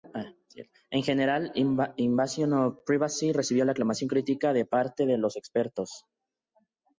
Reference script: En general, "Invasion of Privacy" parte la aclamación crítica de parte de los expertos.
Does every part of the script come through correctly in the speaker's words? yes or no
no